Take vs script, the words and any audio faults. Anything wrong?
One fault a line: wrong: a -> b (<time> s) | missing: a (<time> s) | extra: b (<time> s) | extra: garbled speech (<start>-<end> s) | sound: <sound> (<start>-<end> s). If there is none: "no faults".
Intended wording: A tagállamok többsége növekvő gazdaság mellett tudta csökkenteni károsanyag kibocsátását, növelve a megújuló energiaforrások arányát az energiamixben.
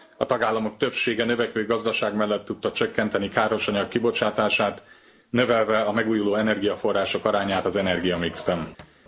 sound: thud (8.8-9.0 s)